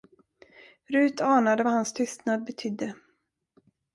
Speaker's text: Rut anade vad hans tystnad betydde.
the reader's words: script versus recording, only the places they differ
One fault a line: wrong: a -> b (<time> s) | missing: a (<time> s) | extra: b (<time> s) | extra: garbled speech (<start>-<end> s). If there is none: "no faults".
no faults